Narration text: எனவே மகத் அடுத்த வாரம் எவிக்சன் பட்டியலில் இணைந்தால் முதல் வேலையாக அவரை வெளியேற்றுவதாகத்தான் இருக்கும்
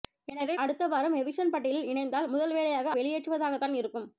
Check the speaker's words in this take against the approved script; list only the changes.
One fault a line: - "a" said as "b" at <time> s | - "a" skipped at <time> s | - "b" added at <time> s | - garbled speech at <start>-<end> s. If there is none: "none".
- "மகத்" skipped at 0.5 s
- "அவரை" skipped at 2.9 s